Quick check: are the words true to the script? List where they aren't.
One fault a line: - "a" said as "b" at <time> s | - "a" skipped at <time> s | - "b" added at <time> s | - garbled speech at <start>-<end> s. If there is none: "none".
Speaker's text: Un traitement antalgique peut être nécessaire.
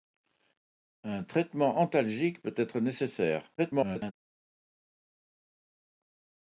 - garbled speech at 3.6-4.1 s